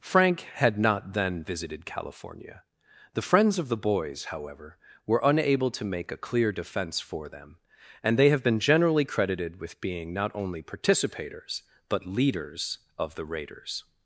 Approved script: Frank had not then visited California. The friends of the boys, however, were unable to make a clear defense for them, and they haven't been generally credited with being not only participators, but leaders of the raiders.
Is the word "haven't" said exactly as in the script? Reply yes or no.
no